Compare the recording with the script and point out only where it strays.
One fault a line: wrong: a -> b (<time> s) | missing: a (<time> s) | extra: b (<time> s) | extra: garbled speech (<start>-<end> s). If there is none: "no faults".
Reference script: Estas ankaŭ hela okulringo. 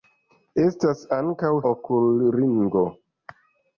missing: hela (1.5 s)